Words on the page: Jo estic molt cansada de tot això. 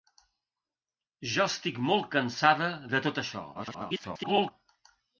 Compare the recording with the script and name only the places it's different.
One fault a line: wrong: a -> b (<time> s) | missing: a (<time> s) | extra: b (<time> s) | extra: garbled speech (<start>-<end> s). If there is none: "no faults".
extra: garbled speech (3.5-4.5 s)